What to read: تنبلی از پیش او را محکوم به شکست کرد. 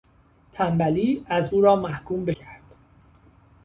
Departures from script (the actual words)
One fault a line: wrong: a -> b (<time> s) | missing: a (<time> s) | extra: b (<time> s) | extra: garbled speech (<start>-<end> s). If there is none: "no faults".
missing: پیش (1.5 s)
missing: شکست (2.3 s)